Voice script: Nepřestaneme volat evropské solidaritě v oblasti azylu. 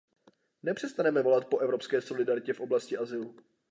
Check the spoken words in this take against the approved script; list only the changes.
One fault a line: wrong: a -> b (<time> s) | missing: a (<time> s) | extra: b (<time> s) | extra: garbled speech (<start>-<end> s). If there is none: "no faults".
extra: po (1.4 s)